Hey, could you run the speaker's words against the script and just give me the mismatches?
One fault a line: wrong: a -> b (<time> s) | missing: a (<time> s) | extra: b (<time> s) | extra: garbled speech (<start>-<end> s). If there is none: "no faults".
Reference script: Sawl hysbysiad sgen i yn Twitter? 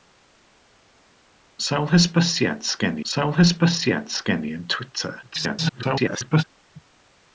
extra: sawl hysbysiad sgen (3.1 s)
extra: garbled speech (5.2-6.4 s)